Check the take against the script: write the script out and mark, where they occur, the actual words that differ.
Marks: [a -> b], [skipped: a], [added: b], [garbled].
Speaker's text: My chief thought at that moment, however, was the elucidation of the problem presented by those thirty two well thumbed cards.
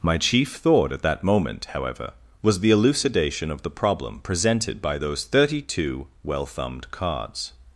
My chief thought at that moment, however, was the elucidation of the problem presented by those thirty two well thumbed cards.